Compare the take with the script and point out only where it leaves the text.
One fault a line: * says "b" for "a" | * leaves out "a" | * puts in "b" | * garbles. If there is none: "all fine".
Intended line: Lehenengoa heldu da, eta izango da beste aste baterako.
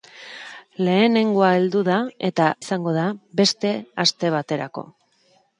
all fine